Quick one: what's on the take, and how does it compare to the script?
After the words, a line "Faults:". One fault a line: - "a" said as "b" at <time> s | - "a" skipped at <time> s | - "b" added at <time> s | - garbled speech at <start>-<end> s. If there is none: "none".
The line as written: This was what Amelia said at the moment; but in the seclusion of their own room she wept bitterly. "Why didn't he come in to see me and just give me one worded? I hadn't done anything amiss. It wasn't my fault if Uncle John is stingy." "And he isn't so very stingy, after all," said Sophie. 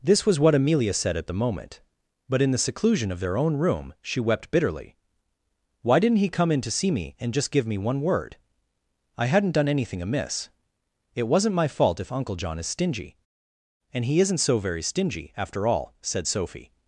This was what Amelia said at the moment; but in the seclusion of their own room she wept bitterly. "Why didn't he come in to see me and just give me one word? I hadn't done anything amiss. It wasn't my fault if Uncle John is stingy." "And he isn't so very stingy, after all," said Sophie.
Faults:
- "worded" said as "word" at 8.0 s